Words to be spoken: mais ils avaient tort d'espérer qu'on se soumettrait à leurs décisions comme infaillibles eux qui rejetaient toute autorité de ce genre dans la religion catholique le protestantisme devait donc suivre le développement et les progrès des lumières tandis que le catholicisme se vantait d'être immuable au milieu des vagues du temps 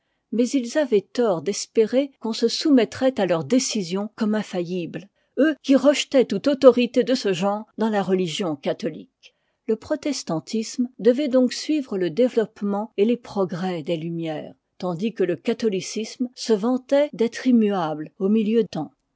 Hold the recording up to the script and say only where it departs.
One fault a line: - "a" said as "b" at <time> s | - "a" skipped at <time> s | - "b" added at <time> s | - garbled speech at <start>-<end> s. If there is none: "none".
- "des vagues du" skipped at 18.6 s